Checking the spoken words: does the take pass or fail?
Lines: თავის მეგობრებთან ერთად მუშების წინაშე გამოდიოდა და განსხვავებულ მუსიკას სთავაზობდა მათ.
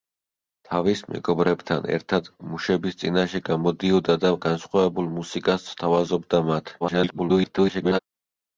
fail